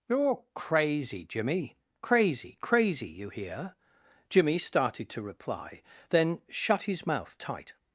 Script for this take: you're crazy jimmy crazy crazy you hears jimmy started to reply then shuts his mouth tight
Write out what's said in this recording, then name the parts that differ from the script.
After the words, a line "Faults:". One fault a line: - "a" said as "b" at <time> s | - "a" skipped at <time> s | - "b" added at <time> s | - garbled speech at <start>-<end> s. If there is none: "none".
you're crazy jimmy crazy crazy you hear jimmy started to reply then shut his mouth tight
Faults:
- "hears" said as "hear" at 3.3 s
- "shuts" said as "shut" at 6.5 s